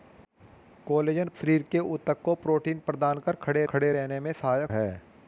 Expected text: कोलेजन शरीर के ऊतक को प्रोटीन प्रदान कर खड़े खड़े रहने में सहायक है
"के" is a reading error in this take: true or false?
false